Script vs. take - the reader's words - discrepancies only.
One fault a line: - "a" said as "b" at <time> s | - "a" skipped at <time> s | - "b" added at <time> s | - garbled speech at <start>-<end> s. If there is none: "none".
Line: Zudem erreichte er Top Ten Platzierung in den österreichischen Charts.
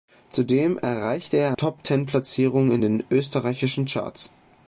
none